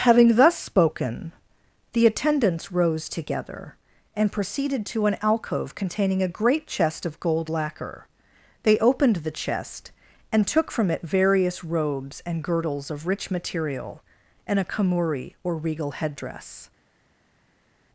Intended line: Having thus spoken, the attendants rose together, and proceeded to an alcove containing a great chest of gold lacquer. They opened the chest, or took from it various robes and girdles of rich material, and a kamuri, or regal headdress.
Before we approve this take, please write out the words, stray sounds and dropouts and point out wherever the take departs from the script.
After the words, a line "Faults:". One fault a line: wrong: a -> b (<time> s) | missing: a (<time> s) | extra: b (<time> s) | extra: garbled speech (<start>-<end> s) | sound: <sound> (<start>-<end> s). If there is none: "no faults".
Having thus spoken, the attendants rose together, and proceeded to an alcove containing a great chest of gold lacquer. They opened the chest, and took from it various robes and girdles of rich material, and a kamuri, or regal headdress.
Faults:
wrong: or -> and (10.3 s)